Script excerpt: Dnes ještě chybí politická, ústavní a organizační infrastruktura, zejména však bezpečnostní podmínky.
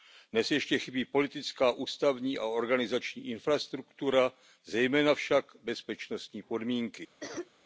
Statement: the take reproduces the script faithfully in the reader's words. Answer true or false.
true